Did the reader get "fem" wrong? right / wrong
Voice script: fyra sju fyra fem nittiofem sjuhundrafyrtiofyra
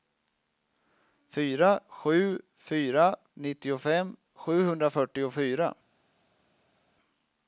wrong